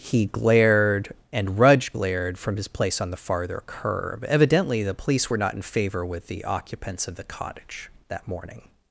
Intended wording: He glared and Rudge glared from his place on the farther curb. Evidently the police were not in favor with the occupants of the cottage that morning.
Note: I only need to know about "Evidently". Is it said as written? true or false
true